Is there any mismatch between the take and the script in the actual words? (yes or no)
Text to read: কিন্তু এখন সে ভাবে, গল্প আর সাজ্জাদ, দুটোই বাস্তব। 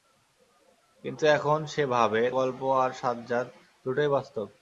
no